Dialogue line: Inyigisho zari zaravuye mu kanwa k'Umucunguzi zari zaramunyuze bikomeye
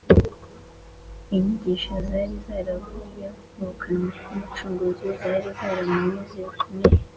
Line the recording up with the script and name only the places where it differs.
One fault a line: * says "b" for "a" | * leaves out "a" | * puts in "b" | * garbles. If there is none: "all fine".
all fine